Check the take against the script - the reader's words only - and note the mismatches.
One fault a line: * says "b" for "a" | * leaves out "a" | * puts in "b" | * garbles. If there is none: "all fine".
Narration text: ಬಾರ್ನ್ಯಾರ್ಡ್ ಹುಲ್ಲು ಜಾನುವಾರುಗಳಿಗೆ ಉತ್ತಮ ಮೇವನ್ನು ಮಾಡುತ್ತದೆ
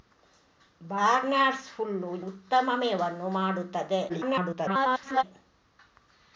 * leaves out "ಜಾನುವಾರುಗಳಿಗೆ"
* garbles